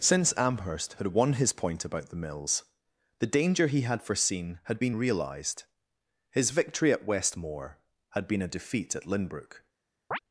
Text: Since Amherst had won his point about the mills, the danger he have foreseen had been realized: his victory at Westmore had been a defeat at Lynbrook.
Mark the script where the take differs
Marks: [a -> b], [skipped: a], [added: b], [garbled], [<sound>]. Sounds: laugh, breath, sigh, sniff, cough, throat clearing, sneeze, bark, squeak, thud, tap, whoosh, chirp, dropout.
Since Amherst had won his point about the mills, the danger he [have -> had] foreseen had been realized: his victory at Westmore had been a defeat at Lynbrook. [chirp]